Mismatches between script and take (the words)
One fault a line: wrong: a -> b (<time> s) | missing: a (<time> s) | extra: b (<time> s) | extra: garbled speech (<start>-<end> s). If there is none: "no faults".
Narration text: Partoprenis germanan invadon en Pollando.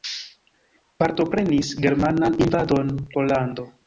missing: en (3.0 s)